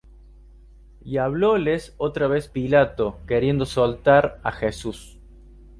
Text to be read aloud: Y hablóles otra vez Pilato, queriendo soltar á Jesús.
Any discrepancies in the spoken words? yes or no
no